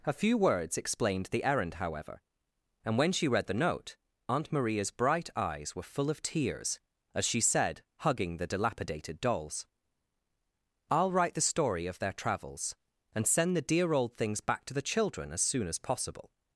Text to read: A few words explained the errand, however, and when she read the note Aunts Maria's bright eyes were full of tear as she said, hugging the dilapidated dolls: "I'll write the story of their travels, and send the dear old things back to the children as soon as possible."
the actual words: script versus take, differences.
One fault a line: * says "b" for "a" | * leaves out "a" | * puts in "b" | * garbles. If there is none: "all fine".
* says "Aunt" for "Aunts"
* says "tears" for "tear"